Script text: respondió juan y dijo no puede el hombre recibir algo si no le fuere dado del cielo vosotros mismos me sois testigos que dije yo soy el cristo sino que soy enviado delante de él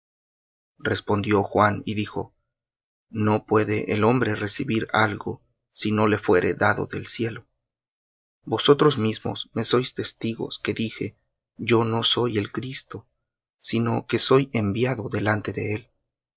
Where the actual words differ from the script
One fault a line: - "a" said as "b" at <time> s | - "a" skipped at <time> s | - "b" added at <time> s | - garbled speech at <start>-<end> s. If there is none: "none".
- "no" added at 11.8 s